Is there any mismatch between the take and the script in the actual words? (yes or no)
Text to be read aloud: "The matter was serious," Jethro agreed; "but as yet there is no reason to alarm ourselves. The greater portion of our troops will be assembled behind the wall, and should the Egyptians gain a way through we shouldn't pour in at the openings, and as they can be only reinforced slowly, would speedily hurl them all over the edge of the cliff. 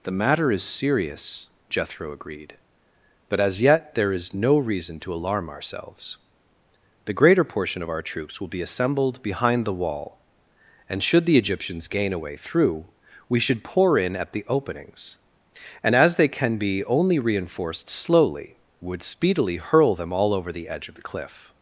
yes